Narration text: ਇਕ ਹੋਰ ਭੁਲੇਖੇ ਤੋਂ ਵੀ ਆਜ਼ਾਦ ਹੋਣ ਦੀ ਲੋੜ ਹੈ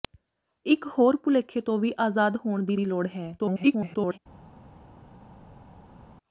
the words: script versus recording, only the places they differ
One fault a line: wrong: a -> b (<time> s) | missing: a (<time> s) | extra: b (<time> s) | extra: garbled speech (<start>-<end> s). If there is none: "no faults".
extra: ਦੀ (2.7 s)
extra: garbled speech (3.4-4.2 s)